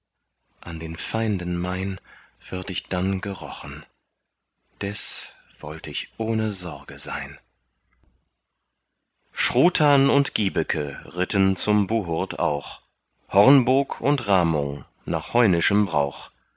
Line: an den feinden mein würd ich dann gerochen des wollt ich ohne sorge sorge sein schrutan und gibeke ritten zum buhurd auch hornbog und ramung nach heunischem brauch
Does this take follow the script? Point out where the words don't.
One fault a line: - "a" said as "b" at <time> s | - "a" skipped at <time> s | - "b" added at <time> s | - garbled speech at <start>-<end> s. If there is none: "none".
- "sorge" skipped at 7.0 s